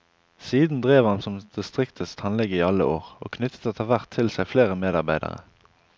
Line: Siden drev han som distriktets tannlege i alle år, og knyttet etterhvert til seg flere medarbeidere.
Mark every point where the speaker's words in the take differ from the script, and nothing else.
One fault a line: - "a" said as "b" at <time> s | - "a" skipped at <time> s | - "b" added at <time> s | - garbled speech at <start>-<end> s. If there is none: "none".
none